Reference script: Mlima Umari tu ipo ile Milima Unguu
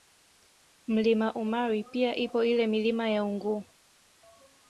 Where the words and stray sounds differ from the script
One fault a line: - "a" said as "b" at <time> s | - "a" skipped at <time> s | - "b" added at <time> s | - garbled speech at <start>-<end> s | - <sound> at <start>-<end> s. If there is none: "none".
- "tu" said as "pia" at 1.8 s
- "ya" added at 3.1 s